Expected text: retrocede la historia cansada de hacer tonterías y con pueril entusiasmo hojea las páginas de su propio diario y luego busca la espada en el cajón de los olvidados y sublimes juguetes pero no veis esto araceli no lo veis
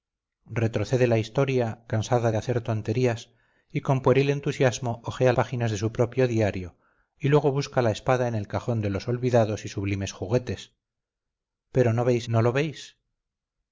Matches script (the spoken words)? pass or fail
fail